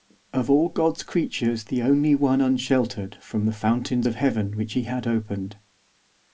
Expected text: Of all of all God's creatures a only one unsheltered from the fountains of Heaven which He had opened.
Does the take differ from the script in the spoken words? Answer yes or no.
yes